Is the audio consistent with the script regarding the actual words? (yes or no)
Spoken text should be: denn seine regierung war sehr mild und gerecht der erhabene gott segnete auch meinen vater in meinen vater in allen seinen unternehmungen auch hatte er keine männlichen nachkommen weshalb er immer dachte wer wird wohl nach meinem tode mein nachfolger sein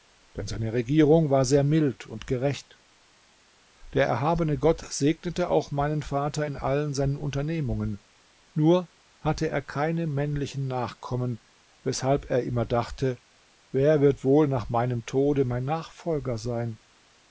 no